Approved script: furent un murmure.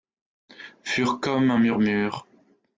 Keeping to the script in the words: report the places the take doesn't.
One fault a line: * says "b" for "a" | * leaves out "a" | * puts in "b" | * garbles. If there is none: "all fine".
* puts in "comme"